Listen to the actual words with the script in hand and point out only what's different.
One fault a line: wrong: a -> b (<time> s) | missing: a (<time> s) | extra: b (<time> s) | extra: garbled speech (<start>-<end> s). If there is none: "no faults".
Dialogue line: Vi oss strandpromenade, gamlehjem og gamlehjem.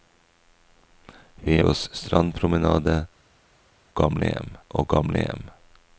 no faults